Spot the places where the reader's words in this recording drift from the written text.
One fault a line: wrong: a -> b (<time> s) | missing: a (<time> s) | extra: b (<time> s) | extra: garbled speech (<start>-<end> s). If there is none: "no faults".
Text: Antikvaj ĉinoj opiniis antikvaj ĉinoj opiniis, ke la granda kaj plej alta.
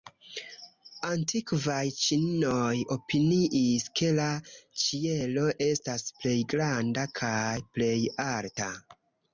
wrong: antikvaj ĉinoj opiniis ke la -> ke la ĉielo estas plej (4.0 s)